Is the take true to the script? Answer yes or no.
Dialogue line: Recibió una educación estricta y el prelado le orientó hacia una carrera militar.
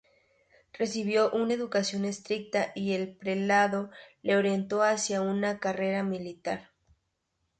yes